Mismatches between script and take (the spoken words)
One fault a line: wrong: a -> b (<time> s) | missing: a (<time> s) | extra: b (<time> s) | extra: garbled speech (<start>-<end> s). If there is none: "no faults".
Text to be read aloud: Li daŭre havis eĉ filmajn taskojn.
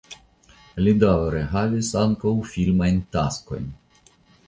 wrong: eĉ -> ankaŭ (2.1 s)